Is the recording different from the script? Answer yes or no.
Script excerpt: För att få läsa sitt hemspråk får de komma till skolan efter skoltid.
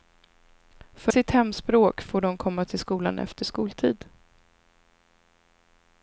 yes